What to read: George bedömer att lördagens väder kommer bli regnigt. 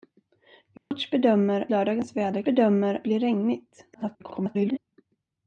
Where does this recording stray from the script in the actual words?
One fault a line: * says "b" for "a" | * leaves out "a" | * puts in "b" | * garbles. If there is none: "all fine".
* leaves out "att"
* says "bedömer" for "kommer"
* garbles